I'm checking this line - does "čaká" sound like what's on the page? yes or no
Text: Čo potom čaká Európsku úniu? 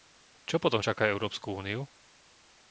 yes